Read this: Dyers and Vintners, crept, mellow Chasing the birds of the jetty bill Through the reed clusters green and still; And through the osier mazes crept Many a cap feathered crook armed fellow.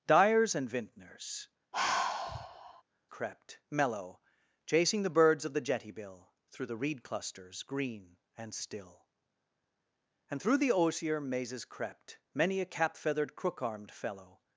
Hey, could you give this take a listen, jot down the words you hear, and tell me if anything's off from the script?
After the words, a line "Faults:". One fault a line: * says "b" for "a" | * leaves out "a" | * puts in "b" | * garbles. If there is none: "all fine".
Dyers and Vintners, crept, mellow Chasing the birds of the jetty bill Through the reed clusters green and still; And through the osier mazes crept Many a cap feathered crook armed fellow.
Faults:
all fine